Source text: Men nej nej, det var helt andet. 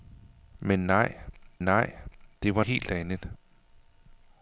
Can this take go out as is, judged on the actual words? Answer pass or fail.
pass